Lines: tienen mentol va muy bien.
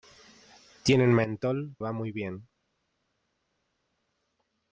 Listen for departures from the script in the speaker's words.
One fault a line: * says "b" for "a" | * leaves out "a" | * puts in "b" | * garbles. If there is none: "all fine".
all fine